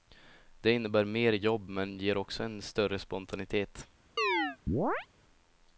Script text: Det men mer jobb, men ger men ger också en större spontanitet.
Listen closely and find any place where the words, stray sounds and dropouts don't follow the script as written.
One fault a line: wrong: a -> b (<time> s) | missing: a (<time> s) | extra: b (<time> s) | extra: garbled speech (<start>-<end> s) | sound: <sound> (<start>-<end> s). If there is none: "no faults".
wrong: men -> innebär (0.7 s)
missing: men ger (2.2 s)
sound: chirp (4.2-5.1 s)